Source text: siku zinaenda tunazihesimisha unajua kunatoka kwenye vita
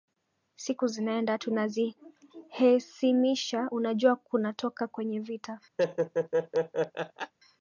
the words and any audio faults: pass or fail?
fail